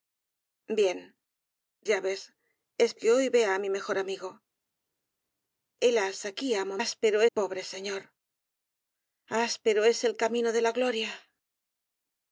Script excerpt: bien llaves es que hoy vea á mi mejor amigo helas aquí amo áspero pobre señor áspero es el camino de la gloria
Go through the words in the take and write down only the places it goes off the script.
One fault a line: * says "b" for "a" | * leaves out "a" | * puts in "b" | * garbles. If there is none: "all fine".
all fine